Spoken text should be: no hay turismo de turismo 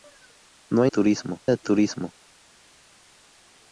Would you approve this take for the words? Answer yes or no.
yes